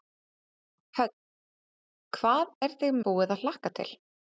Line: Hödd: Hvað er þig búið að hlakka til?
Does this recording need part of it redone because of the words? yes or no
no